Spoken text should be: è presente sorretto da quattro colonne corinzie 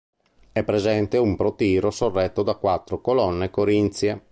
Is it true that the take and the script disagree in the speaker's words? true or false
true